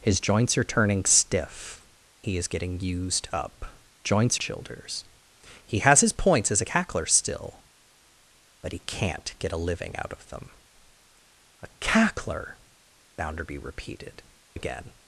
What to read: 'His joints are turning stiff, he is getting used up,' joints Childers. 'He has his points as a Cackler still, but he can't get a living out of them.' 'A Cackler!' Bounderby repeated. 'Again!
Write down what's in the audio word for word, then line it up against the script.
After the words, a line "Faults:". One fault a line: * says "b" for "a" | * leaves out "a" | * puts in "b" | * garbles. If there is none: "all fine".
'His joints are turning stiff, he is getting used up,' joints Childers. 'He has his points as a Cackler still, but he can't get a living out of them.' 'A Cackler!' Bounderby repeated. 'Again!
Faults:
all fine